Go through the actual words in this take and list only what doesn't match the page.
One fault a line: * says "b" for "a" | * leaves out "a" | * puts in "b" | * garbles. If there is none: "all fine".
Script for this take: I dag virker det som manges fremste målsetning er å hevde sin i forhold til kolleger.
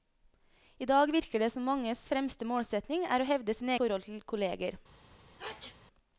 all fine